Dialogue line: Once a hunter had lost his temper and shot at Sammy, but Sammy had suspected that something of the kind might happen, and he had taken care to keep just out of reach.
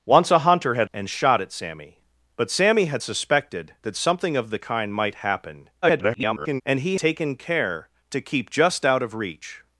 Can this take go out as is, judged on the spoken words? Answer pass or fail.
fail